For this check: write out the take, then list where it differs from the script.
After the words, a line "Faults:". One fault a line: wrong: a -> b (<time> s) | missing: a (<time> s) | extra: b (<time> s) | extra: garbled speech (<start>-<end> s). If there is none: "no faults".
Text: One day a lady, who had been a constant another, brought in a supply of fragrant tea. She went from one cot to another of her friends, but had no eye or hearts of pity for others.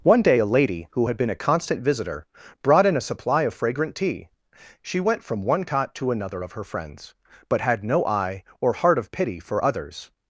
One day a lady, who had been a constant visitor, brought in a supply of fragrant tea. She went from one cot to another of her friends, but had no eye or heart of pity for others.
Faults:
wrong: another -> visitor (1.8 s)
wrong: hearts -> heart (8.7 s)